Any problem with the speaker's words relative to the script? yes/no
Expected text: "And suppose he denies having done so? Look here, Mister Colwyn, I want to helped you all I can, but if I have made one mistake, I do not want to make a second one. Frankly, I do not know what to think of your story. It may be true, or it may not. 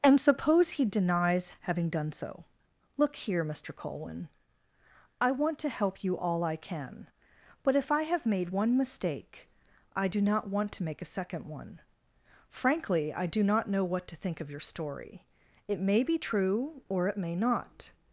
yes